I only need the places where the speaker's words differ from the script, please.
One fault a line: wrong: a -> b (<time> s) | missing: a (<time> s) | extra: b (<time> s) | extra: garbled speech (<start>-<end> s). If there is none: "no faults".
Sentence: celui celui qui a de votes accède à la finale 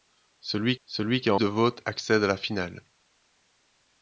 no faults